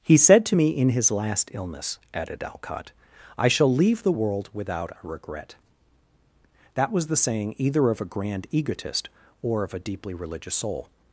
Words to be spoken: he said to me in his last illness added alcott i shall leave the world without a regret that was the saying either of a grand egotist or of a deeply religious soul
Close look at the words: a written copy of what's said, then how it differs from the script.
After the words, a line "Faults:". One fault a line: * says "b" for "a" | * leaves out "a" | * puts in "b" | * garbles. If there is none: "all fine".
he said to me in his last illness added alcott i shall leave the world without a regret that was the saying either of a grand egotist or of a deeply religious soul
Faults:
all fine